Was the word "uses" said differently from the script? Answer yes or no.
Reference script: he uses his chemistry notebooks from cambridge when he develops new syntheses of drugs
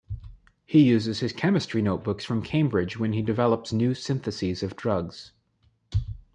no